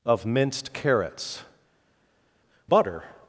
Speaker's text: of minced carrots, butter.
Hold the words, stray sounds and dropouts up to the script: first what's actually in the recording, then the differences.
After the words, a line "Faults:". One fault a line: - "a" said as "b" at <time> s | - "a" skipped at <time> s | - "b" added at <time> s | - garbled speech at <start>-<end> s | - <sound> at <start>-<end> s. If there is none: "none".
of minced carrots, butter.
Faults:
none